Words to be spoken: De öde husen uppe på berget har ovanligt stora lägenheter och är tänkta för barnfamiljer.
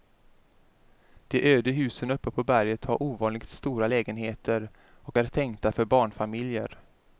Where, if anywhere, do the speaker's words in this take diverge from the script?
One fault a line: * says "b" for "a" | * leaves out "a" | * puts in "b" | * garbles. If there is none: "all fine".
all fine